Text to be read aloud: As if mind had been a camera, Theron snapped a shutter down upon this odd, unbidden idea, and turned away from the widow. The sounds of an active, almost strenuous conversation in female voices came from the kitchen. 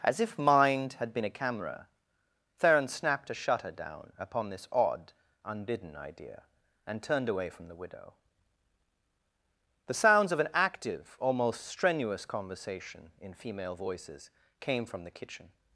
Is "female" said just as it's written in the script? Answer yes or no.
yes